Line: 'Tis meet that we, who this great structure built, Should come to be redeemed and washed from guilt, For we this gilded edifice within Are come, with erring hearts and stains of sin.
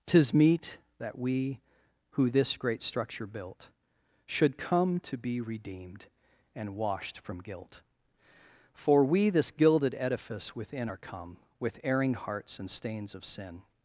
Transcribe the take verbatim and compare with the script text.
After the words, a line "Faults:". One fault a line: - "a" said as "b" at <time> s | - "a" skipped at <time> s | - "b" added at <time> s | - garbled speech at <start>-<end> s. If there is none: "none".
'Tis meet that we, who this great structure built, Should come to be redeemed and washed from guilt, For we this gilded edifice within Are come, with erring hearts and stains of sin.
Faults:
none